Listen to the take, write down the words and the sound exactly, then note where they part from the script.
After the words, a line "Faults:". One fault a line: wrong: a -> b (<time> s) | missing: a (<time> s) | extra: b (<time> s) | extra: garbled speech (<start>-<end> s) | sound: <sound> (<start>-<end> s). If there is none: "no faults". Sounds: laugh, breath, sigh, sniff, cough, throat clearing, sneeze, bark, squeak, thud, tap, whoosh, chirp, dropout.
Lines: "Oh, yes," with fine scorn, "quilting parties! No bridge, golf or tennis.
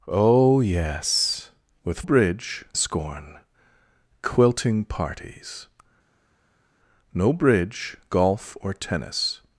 "Oh, yes," with bridge scorn, "quilting parties! No bridge, golf or tennis.
Faults:
wrong: fine -> bridge (2.0 s)